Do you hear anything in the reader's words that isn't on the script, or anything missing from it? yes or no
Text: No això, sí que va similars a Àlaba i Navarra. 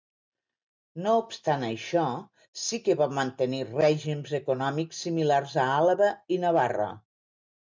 yes